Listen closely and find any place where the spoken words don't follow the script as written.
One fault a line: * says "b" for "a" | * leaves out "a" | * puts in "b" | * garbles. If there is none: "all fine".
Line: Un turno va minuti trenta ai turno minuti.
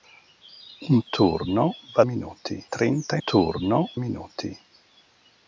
all fine